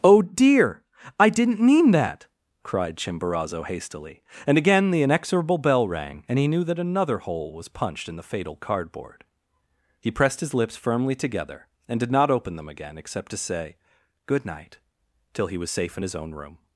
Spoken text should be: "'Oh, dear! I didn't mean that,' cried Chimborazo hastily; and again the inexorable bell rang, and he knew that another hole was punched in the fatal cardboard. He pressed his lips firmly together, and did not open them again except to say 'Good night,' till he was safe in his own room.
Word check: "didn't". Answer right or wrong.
right